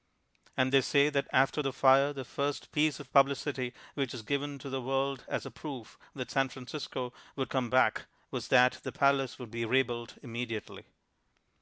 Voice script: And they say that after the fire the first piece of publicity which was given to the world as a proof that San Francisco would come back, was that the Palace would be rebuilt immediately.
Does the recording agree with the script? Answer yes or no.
yes